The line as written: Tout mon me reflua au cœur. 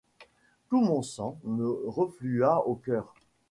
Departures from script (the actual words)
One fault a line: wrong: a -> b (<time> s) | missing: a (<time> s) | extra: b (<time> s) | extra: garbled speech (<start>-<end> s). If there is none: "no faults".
extra: sang (1.0 s)